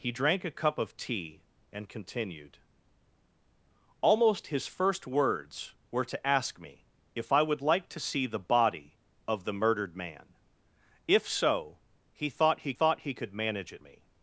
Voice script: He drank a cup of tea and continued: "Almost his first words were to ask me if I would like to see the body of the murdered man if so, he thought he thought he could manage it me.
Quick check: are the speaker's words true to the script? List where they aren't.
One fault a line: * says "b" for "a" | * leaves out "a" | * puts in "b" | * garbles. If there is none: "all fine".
all fine